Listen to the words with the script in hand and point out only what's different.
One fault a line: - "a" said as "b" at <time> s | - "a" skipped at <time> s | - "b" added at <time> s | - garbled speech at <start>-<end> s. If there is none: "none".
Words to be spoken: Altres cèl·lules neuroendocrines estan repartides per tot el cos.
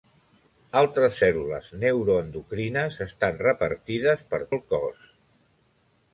- "tot" skipped at 4.4 s